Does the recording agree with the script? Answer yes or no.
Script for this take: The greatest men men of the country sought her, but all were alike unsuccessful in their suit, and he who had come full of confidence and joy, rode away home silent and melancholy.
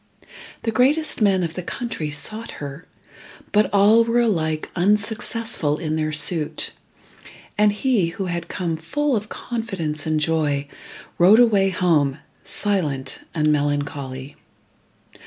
no